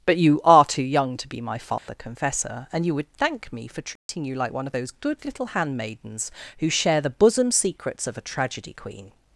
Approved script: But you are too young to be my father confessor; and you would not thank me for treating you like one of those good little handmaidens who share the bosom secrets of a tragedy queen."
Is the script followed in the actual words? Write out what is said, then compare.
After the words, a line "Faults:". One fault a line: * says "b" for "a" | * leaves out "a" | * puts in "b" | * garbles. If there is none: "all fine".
But you are too young to be my father confessor; and you would thank me for treating you like one of those good little handmaidens who share the bosom secrets of a tragedy queen."
Faults:
* leaves out "not"